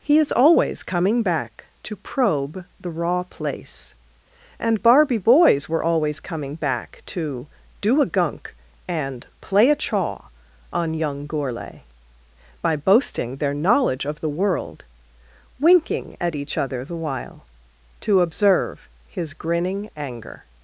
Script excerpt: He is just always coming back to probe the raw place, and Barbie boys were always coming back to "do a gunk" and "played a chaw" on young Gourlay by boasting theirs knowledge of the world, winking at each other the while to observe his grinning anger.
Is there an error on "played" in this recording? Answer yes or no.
yes